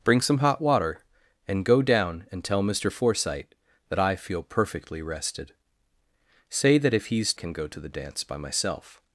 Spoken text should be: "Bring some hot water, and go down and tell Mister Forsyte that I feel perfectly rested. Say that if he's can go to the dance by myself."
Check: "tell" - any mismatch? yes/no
no